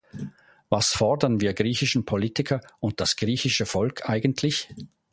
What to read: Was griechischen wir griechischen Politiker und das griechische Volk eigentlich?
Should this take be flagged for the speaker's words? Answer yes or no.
yes